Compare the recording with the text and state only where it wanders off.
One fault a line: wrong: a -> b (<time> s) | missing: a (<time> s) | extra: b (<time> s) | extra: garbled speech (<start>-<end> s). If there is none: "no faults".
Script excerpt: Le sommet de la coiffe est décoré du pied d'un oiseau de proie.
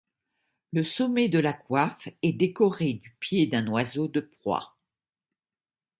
no faults